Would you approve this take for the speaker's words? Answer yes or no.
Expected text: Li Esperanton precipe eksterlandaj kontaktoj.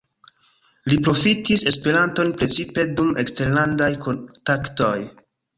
no